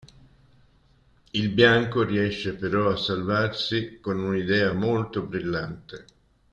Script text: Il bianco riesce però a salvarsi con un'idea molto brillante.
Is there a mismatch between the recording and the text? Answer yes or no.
no